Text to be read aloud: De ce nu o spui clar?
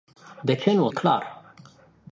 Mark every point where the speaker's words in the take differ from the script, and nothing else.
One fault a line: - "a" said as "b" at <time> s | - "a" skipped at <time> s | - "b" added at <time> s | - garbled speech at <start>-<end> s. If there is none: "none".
- "spui" skipped at 0.9 s